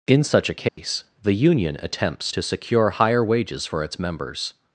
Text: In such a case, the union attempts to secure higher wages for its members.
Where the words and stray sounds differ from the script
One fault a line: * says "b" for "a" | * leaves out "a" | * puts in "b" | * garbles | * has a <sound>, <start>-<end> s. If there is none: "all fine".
* has a dropout, 0.7-0.8 s